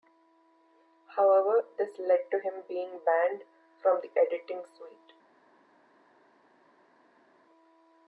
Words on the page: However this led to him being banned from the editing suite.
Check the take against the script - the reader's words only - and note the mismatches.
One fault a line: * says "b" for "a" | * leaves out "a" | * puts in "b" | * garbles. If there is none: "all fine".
all fine